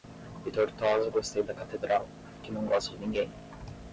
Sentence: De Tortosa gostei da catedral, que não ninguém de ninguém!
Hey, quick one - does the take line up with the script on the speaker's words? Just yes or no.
no